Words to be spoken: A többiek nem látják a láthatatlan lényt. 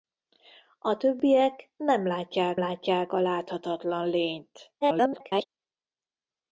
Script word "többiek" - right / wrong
right